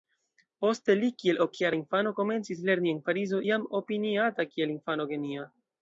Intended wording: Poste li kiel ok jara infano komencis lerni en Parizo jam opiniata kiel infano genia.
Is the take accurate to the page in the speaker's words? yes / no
yes